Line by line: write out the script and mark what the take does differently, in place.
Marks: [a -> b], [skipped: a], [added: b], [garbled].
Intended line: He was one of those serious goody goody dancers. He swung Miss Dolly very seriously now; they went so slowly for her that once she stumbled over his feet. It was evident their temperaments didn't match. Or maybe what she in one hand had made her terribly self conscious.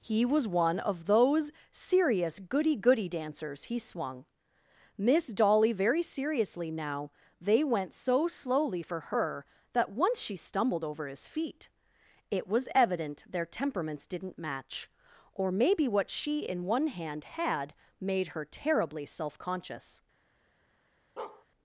He was one of those serious goody goody dancers. He swung Miss Dolly very seriously now; they went so slowly for her that once she stumbled over his feet. It was evident their temperaments didn't match. Or maybe what she in one hand had made her terribly self conscious.